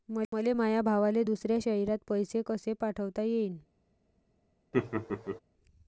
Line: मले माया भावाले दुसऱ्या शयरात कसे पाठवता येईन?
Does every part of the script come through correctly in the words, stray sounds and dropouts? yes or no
no